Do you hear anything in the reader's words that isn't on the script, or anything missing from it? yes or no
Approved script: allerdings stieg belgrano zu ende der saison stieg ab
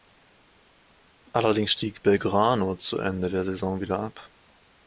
yes